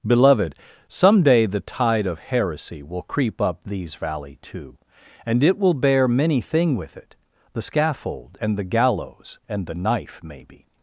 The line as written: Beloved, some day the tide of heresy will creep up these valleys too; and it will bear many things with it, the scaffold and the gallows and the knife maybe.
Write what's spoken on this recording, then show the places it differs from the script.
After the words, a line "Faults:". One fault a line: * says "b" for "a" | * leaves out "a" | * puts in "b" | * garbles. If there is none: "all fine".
Beloved, some day the tide of heresy will creep up these valley too; and it will bear many thing with it, the scaffold and the gallows and the knife maybe.
Faults:
* says "valley" for "valleys"
* says "thing" for "things"